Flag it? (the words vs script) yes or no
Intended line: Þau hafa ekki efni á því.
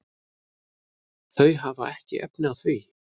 no